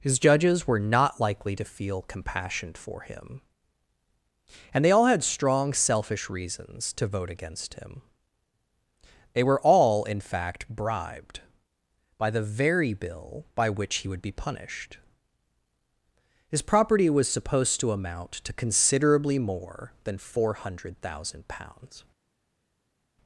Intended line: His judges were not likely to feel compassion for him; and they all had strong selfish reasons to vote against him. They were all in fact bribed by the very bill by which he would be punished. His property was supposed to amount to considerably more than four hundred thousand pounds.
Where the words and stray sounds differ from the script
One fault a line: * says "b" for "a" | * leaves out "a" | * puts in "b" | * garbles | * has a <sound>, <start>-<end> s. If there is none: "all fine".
all fine